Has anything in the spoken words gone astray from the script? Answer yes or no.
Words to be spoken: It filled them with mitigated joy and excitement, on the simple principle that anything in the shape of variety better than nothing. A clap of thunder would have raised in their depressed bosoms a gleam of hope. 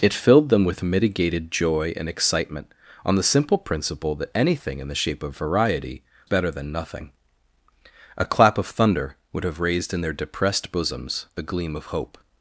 no